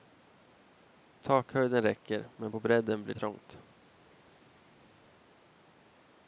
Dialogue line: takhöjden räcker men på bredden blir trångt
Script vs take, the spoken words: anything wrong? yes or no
no